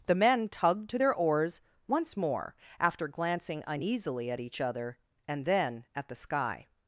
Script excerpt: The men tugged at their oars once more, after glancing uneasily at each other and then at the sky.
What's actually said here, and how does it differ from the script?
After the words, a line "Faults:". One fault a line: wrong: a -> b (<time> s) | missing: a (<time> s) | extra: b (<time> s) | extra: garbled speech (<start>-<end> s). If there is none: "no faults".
The men tugged to their oars once more, after glancing uneasily at each other and then at the sky.
Faults:
wrong: at -> to (0.9 s)